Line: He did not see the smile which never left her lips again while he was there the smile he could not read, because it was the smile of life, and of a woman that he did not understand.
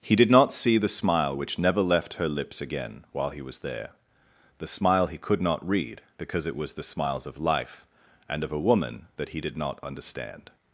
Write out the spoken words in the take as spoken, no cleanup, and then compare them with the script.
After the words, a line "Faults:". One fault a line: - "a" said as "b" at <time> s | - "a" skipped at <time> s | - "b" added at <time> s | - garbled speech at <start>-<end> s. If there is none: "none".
He did not see the smile which never left her lips again while he was there the smile he could not read, because it was the smiles of life, and of a woman that he did not understand.
Faults:
- "smile" said as "smiles" at 6.8 s